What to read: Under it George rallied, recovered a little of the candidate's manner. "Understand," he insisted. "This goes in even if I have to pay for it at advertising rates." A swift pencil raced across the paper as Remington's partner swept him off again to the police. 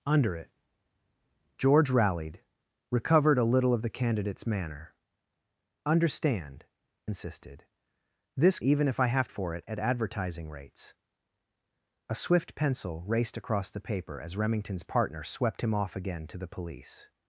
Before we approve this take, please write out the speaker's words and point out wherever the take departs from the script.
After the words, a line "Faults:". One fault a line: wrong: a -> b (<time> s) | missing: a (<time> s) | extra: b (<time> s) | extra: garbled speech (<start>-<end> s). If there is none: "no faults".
Under it George rallied, recovered a little of the candidate's manner. "Understand," insisted. "This even if I have for it at advertising rates." A swift pencil raced across the paper as Remington's partner swept him off again to the police.
Faults:
missing: he (6.7 s)
missing: goes in (8.6 s)
missing: to pay (9.3 s)